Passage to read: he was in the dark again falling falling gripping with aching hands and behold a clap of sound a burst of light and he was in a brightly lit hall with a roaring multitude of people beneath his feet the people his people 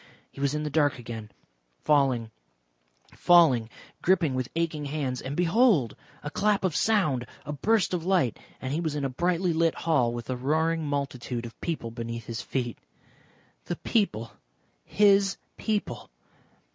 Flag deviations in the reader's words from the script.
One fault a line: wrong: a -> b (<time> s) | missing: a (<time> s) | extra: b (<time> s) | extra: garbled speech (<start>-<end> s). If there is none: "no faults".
no faults